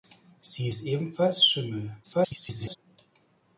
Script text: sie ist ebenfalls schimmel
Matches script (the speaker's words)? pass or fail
fail